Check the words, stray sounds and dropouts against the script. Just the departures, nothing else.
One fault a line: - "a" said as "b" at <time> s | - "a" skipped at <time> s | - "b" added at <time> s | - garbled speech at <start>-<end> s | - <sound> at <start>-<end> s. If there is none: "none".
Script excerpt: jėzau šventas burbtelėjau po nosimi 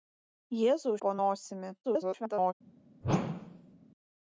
- "šventas burbtelėjau" skipped at 0.9 s
- garbled speech at 1.8-2.5 s
- whoosh at 3.0-3.8 s